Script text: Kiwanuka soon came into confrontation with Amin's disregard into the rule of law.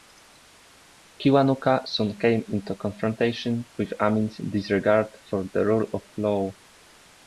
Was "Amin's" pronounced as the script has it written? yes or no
yes